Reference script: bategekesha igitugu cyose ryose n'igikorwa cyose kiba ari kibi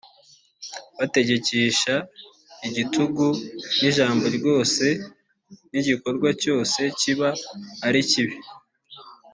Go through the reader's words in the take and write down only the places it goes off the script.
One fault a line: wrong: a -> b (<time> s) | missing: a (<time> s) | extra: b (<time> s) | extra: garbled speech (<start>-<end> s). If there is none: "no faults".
wrong: cyose -> n'ijambo (3.8 s)